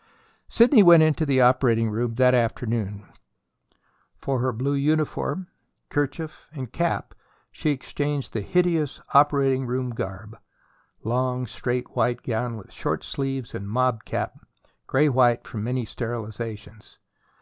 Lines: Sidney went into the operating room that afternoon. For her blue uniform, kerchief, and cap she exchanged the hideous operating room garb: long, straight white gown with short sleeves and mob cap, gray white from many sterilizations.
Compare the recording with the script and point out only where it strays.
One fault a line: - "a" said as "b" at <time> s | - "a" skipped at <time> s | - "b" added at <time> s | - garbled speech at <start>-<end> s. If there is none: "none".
none